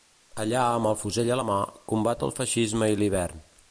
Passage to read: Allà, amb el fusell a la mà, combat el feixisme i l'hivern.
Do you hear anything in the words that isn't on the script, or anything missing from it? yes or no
no